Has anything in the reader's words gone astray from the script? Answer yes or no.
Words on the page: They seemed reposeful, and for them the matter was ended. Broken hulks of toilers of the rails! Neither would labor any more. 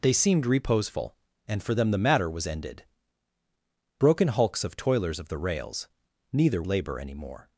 yes